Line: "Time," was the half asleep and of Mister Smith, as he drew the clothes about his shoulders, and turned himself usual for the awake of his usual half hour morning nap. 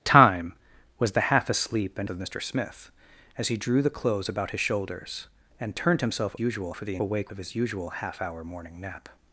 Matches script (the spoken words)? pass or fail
pass